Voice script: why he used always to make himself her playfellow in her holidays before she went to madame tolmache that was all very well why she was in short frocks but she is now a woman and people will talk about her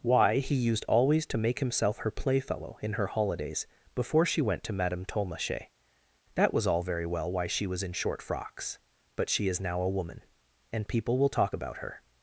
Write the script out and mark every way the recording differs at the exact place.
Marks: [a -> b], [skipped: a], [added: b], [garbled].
why he used always to make himself her playfellow in her holidays before she went to madame tolmache that was all very well why she was in short frocks but she is now a woman and people will talk about her